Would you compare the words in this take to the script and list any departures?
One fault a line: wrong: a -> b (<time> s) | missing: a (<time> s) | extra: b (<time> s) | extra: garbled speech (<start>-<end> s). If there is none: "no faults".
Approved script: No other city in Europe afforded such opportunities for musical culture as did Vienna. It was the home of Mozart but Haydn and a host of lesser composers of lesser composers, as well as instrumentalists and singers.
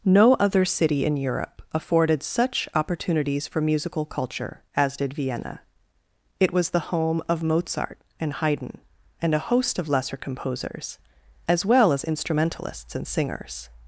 wrong: but -> and (8.2 s)
missing: of lesser composers (11.0 s)